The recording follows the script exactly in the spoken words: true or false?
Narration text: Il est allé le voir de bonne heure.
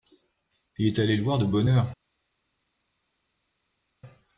true